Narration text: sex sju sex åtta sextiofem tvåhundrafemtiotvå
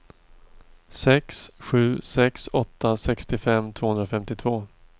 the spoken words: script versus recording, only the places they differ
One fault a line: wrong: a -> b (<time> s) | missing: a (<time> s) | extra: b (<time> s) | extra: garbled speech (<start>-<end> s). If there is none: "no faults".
no faults